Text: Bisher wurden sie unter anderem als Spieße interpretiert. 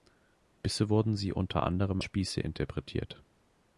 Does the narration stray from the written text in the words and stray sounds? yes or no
yes